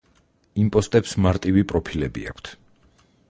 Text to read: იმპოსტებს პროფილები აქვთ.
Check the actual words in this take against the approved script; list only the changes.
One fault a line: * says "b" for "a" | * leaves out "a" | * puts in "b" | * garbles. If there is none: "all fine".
* puts in "მარტივი"